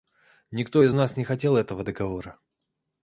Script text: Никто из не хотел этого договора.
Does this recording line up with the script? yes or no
no